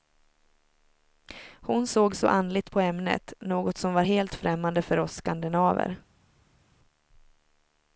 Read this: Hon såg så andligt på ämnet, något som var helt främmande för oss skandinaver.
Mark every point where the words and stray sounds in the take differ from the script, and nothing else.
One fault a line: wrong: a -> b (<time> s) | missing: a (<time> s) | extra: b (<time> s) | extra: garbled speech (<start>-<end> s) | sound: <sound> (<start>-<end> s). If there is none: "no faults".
no faults